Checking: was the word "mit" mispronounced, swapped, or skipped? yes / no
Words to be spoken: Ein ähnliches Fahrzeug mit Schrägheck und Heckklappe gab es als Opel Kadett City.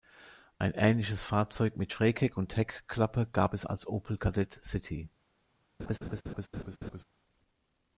no